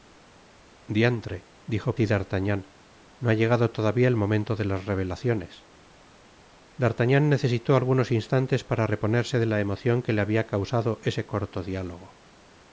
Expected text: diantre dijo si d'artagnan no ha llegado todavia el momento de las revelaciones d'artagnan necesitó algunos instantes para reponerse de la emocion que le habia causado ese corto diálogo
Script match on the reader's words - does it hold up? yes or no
yes